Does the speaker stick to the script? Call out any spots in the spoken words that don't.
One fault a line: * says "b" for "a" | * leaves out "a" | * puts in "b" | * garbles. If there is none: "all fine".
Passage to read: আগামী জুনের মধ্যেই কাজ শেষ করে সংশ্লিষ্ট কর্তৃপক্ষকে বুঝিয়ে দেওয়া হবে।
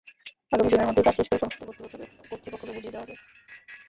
all fine